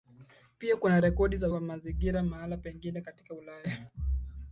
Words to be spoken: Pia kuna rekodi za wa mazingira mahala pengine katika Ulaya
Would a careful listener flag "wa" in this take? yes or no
no